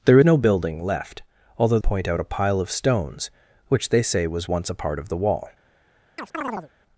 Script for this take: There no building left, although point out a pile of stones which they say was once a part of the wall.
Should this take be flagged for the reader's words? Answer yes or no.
no